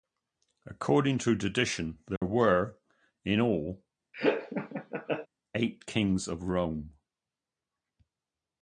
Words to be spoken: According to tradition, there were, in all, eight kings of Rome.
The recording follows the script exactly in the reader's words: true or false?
true